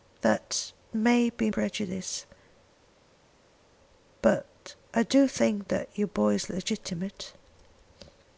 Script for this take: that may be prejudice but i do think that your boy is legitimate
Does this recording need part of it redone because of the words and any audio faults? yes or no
no